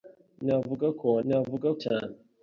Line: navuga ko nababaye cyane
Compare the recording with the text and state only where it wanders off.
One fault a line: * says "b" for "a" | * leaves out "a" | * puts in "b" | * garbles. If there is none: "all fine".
* says "navuga" for "nababaye"